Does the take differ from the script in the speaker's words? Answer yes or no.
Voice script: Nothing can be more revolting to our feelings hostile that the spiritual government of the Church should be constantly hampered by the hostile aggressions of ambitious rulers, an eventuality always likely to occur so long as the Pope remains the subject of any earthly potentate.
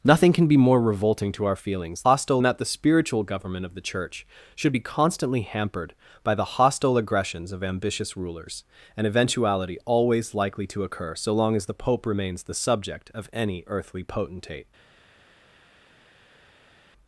no